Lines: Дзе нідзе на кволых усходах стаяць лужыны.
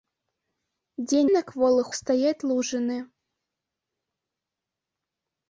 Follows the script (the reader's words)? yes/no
no